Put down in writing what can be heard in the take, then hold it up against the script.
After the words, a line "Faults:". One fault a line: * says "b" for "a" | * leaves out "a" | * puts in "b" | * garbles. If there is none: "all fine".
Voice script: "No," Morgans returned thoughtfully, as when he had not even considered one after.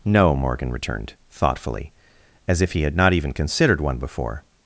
"No," Morgan returned thoughtfully, as if he had not even considered one before.
Faults:
* says "Morgan" for "Morgans"
* says "if" for "when"
* says "before" for "after"